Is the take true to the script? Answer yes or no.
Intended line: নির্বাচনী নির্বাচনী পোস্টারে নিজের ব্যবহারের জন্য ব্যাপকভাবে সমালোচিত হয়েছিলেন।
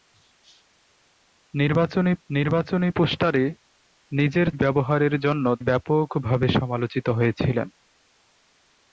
yes